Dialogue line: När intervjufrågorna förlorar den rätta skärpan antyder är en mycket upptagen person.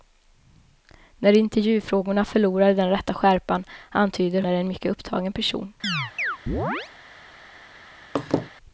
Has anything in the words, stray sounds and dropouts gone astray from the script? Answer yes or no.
yes